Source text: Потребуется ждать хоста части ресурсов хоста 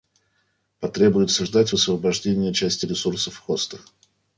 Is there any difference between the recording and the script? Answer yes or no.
yes